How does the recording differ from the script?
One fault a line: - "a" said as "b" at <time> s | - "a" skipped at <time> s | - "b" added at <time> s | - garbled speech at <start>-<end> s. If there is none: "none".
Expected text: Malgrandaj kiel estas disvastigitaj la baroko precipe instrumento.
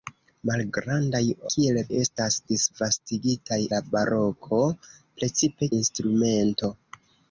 none